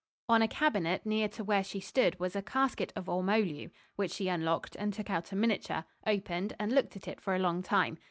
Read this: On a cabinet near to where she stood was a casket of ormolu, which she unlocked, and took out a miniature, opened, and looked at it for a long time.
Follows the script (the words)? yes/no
yes